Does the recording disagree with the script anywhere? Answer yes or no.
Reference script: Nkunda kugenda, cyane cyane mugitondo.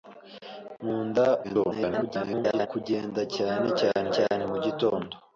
yes